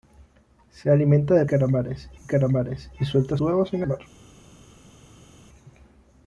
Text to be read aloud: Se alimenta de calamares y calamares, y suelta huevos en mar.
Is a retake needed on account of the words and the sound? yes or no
no